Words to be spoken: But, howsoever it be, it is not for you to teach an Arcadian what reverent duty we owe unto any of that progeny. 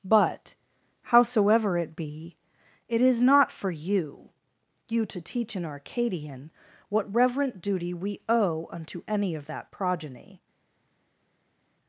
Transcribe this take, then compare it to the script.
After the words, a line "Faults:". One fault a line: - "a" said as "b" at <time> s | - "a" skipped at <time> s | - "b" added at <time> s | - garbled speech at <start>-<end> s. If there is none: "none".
But, howsoever it be, it is not for you you to teach an Arcadian what reverent duty we owe unto any of that progeny.
Faults:
- "you" added at 4.9 s